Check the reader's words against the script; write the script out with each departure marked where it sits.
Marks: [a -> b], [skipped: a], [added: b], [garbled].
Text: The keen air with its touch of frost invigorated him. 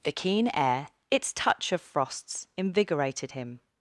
The keen air [skipped: with] its touch of [frost -> frosts] invigorated him.